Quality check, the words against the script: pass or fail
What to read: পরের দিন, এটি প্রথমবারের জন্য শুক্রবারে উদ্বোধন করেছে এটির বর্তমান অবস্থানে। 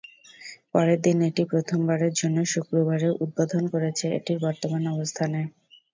pass